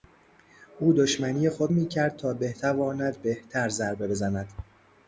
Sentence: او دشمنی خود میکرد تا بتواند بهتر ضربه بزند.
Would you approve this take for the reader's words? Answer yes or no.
yes